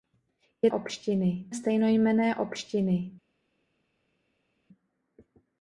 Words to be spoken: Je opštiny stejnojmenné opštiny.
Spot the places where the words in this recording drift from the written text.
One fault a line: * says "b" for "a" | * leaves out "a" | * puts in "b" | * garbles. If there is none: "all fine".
all fine